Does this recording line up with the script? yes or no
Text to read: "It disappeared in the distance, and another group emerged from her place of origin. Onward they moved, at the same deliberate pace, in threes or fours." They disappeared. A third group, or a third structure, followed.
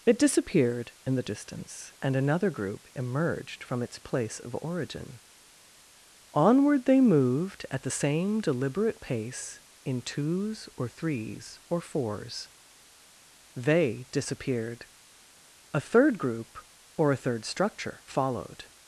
no